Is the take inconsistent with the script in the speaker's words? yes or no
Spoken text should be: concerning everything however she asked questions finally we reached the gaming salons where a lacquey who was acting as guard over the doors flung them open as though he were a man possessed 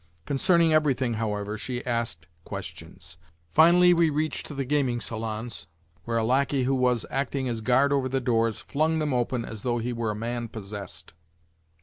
no